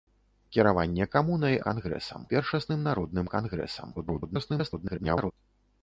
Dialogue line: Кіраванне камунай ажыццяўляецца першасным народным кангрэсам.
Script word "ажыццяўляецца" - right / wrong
wrong